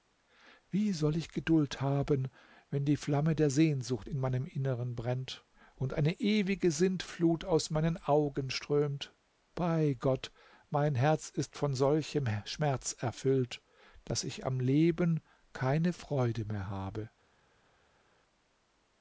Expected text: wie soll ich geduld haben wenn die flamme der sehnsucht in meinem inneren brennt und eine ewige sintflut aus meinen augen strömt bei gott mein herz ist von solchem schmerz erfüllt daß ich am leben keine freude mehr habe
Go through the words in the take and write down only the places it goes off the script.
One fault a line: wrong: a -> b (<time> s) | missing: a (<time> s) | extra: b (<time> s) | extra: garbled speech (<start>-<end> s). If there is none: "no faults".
no faults